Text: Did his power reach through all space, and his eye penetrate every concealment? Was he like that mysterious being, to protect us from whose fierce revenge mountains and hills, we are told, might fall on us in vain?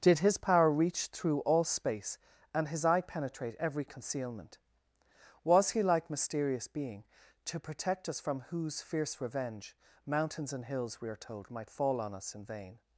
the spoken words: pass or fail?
fail